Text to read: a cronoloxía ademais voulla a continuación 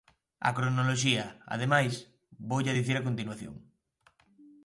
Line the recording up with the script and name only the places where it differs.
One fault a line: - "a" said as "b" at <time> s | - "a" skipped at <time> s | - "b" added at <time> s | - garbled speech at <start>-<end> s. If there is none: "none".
- "dicir" added at 2.8 s